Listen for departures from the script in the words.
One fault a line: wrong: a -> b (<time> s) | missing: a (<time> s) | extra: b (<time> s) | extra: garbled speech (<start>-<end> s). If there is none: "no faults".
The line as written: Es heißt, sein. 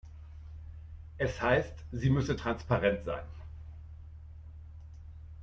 extra: sie müsse transparent (1.9 s)